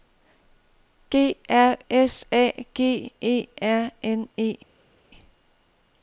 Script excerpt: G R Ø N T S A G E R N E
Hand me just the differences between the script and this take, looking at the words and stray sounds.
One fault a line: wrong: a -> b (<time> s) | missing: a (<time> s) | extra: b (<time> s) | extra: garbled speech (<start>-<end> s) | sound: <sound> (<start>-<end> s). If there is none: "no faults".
missing: Ø N T (1.8 s)